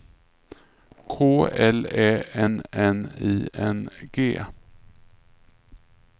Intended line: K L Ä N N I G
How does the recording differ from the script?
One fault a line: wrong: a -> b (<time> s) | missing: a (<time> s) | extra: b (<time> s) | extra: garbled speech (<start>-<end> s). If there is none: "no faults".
extra: N (3.7 s)